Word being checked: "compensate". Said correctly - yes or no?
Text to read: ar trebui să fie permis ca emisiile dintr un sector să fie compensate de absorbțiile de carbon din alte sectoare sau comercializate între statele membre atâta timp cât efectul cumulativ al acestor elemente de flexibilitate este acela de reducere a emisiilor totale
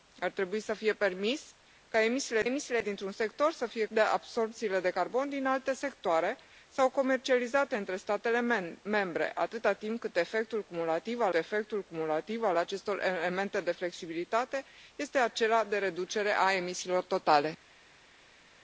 no